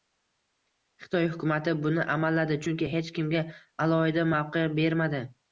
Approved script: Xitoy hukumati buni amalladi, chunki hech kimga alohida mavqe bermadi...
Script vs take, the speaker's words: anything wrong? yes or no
no